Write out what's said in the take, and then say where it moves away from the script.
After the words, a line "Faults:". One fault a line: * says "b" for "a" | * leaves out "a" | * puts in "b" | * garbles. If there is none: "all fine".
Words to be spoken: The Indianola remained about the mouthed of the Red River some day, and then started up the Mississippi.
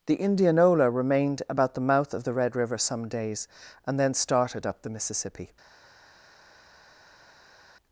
The Indianola remained about the mouth of the Red River some days, and then started up the Mississippi.
Faults:
* says "mouth" for "mouthed"
* says "days" for "day"